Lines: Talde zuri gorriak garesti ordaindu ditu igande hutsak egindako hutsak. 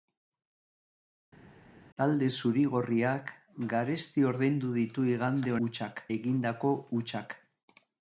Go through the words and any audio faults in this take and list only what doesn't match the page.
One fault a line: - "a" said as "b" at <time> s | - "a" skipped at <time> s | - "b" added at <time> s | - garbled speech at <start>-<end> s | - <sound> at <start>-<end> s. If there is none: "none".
none